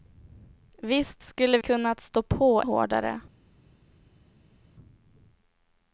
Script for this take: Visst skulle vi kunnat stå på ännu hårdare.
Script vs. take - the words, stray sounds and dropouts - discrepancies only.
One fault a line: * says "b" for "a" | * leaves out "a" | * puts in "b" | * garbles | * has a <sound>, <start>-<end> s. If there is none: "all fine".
* leaves out "vi"
* leaves out "ännu"